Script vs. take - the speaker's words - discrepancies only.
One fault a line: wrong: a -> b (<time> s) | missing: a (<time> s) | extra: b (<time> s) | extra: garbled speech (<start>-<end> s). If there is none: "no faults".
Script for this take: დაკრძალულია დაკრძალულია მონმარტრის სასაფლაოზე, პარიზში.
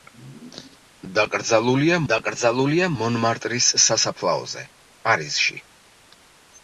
no faults